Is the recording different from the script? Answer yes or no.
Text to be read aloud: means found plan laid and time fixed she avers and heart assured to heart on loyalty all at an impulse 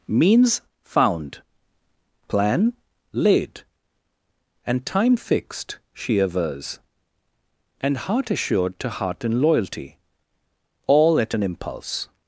yes